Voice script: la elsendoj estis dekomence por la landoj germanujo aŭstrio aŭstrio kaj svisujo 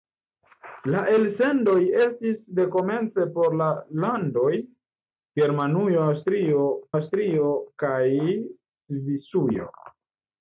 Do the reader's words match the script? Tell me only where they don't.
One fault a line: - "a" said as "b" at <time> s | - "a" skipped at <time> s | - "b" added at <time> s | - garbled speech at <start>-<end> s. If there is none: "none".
none